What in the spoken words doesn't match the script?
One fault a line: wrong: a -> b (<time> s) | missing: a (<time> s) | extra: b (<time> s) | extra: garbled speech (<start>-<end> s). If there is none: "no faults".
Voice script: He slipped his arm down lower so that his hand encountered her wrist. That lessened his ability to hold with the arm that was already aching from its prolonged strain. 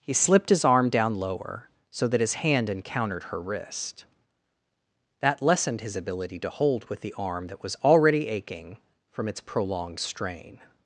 no faults